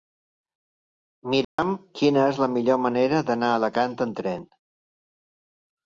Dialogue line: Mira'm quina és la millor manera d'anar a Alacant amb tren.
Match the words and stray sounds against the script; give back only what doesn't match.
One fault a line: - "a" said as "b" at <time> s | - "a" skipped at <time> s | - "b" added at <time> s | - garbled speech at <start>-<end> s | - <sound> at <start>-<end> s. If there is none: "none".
- dropout at 1.4-1.6 s